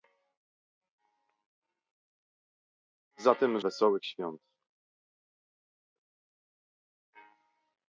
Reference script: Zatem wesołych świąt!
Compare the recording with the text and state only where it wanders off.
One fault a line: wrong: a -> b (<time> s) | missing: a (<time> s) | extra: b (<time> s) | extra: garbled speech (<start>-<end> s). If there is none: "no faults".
no faults